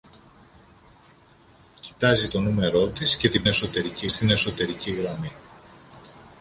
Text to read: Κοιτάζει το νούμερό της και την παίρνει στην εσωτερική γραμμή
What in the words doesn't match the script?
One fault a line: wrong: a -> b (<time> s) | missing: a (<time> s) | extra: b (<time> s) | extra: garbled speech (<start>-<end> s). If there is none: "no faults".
wrong: παίρνει -> εσωτερική (3.5 s)